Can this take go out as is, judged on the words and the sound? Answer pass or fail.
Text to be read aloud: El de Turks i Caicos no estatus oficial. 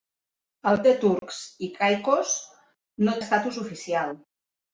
fail